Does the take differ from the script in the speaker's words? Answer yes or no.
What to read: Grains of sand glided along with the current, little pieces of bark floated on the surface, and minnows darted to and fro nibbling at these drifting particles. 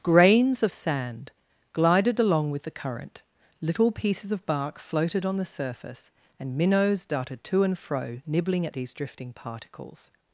no